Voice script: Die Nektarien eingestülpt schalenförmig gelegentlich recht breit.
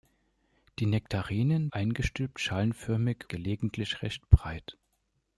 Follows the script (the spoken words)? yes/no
yes